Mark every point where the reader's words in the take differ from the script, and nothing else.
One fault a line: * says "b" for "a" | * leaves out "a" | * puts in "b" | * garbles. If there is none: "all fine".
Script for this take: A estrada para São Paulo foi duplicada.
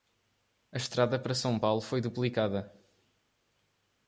all fine